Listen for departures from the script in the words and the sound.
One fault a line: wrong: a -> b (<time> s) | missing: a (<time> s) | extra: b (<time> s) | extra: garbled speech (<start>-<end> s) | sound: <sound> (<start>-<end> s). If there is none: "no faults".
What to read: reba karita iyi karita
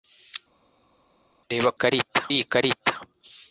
no faults